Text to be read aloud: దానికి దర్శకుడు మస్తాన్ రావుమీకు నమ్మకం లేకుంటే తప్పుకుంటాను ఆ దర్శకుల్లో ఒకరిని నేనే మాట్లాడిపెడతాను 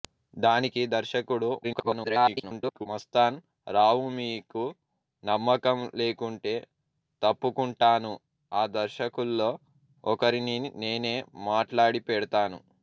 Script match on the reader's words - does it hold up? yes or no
no